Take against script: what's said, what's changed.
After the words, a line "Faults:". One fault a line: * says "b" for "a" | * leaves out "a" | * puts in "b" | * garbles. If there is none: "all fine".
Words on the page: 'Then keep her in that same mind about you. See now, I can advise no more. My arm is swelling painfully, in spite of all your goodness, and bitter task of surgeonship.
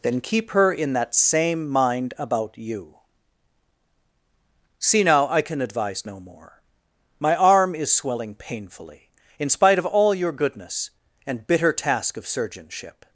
'Then keep her in that same mind about you. See now, I can advise no more. My arm is swelling painfully, in spite of all your goodness, and bitter task of surgeonship.
Faults:
all fine